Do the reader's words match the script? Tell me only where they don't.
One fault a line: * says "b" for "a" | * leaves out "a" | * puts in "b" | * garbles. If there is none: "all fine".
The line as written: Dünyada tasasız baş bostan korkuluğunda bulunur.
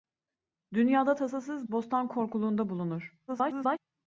* leaves out "baş"
* garbles